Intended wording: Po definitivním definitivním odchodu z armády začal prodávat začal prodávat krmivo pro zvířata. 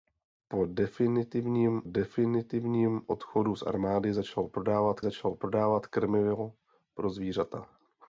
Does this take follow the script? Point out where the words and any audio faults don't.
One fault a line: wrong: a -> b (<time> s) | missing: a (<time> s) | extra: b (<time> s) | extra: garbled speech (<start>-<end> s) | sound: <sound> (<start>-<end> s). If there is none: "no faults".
no faults